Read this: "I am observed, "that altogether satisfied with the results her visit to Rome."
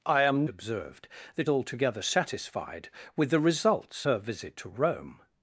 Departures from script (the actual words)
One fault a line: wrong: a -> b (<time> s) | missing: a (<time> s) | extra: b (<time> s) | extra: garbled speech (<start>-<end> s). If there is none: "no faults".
no faults